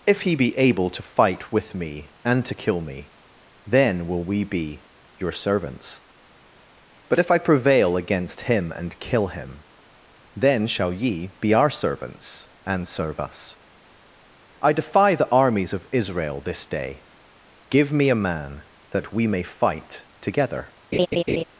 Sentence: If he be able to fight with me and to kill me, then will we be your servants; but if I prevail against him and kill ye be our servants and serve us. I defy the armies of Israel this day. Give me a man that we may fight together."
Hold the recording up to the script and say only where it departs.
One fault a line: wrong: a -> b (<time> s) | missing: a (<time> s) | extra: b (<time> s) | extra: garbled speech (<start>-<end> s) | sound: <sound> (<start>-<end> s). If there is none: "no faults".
extra: him then shall (9.3 s)
sound: laugh (20.9-21.4 s)